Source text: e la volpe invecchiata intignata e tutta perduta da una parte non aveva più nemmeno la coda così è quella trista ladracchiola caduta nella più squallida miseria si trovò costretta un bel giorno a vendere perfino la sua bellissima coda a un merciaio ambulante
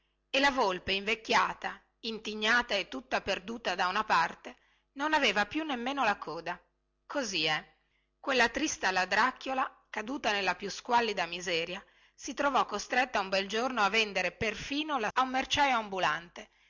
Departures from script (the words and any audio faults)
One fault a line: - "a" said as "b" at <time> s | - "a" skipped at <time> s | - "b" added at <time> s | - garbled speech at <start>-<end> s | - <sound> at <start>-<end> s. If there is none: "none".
- "sua bellissima coda" skipped at 15.1 s